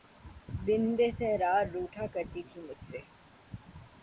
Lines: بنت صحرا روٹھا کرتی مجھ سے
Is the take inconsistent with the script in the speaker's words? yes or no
yes